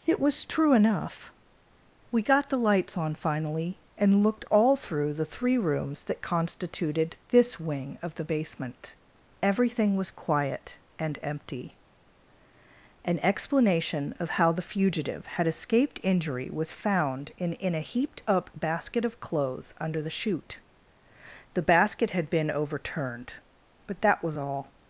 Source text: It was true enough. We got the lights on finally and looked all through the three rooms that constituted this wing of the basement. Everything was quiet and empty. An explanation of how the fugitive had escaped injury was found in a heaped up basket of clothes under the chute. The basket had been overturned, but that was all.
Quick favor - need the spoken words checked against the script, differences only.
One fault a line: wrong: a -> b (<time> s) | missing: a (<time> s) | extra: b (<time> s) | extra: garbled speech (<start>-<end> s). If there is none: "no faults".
extra: in (17.5 s)